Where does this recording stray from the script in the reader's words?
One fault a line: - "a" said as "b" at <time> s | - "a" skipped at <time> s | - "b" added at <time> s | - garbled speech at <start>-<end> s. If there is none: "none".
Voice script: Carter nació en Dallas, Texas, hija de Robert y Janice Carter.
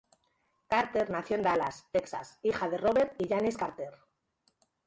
none